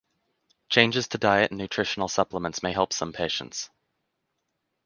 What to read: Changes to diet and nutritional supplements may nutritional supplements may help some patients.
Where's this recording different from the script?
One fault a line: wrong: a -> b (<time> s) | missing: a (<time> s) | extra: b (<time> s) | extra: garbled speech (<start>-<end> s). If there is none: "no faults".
missing: nutritional supplements may (2.7 s)